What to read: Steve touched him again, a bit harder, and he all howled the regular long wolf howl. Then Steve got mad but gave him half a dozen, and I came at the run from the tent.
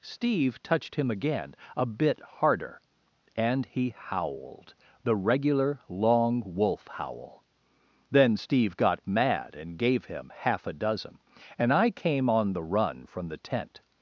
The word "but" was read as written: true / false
false